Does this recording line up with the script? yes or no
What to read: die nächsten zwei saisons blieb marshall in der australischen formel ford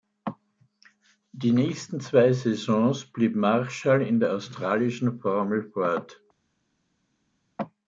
yes